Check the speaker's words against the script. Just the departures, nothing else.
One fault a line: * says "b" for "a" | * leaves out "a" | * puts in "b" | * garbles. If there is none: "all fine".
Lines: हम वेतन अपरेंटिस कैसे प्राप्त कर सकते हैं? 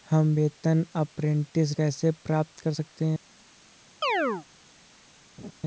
all fine